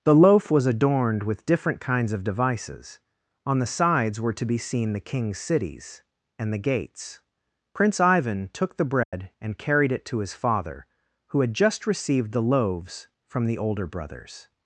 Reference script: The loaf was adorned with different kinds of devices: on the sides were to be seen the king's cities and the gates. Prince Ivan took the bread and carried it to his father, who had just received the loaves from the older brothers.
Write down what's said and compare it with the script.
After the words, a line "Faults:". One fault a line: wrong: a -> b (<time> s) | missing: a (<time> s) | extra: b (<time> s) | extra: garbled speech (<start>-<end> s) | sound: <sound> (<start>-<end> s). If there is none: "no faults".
The loaf was adorned with different kinds of devices: on the sides were to be seen the king's cities and the gates. Prince Ivan took the bread and carried it to his father, who had just received the loaves from the older brothers.
Faults:
sound: dropout (9.0-9.1 s)